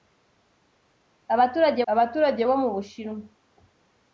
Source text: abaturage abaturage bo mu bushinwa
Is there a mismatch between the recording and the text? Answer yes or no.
no